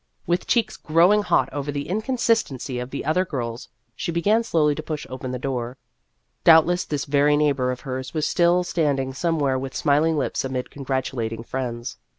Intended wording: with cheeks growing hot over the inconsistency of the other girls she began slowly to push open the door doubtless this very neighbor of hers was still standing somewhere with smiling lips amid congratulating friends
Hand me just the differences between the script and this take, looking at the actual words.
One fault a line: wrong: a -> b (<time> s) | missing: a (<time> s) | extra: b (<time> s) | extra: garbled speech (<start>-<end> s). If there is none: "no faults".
no faults